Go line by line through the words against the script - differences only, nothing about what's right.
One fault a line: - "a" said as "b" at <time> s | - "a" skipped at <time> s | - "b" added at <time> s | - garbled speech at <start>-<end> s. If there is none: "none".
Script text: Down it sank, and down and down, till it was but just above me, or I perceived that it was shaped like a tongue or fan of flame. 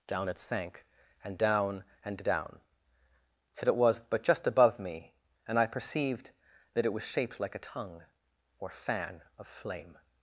- "or" said as "and" at 5.5 s